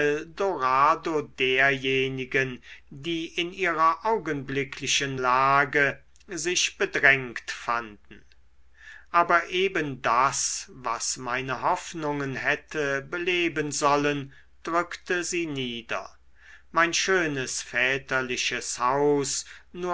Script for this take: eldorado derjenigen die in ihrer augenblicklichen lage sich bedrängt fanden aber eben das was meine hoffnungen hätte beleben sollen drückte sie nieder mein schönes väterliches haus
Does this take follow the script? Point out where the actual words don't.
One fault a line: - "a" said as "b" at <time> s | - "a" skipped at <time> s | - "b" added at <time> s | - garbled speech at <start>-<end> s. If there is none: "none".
none